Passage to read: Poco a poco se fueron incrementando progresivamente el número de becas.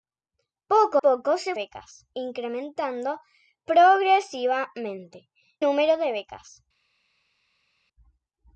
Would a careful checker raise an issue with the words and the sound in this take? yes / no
yes